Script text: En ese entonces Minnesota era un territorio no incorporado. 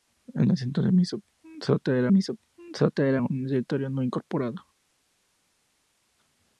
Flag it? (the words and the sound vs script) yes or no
yes